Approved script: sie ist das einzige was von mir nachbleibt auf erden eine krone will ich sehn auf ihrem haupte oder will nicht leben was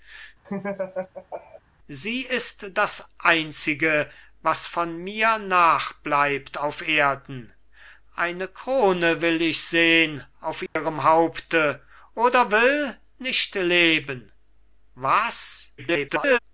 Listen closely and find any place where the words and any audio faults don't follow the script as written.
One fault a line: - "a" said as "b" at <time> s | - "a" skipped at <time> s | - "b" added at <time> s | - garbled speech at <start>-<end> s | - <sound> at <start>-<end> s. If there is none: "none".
- laugh at 0.4-1.6 s
- dropout at 10.7-10.8 s
- garbled speech at 15.8-16.4 s